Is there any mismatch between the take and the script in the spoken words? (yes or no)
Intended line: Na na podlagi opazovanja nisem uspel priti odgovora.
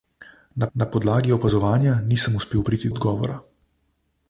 no